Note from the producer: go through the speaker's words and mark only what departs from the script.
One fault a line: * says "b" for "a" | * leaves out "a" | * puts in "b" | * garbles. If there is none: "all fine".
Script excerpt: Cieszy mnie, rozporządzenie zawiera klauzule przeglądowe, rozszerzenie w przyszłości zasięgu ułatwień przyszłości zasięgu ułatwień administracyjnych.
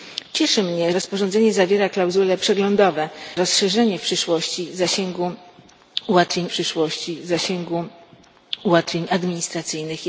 all fine